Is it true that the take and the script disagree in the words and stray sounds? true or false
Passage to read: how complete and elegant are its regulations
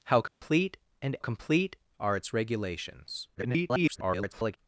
true